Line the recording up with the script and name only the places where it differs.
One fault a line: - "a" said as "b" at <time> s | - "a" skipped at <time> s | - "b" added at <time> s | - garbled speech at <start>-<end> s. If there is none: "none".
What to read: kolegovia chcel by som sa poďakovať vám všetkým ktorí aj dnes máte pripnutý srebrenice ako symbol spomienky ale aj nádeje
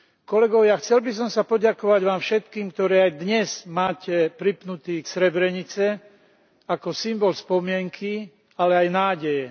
none